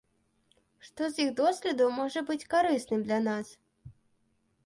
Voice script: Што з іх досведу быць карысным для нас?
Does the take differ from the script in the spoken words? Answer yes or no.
yes